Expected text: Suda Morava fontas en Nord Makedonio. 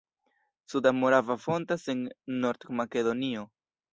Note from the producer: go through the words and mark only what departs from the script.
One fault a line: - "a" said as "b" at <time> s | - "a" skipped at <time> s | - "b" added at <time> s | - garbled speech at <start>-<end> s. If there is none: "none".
none